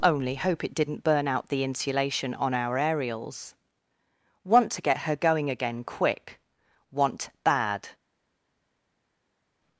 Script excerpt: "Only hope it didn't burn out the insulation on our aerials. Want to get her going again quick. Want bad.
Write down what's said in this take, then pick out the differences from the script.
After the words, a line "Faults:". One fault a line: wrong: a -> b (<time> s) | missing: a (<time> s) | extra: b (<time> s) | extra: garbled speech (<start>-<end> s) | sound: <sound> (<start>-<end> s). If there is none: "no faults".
"Only hope it didn't burn out the insulation on our aerials. Want to get her going again quick. Want bad.
Faults:
no faults